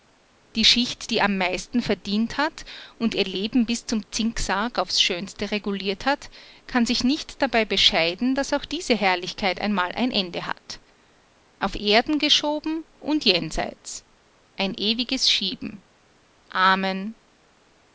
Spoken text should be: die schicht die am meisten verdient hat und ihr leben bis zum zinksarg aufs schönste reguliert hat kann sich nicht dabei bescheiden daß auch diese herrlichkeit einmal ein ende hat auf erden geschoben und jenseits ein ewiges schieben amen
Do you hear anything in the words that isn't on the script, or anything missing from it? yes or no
no